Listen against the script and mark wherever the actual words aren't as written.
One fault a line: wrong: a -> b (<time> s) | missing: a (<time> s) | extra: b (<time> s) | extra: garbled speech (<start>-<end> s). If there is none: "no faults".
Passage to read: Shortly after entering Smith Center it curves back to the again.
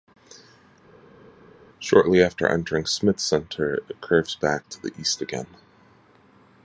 extra: east (5.0 s)